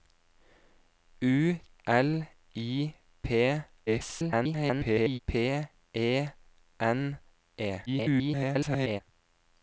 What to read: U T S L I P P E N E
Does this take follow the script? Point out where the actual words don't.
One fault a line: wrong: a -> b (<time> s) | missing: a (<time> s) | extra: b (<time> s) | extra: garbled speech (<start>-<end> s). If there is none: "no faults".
missing: T S (1.6 s)
extra: garbled speech (3.9-5.2 s)
extra: garbled speech (7.9-9.0 s)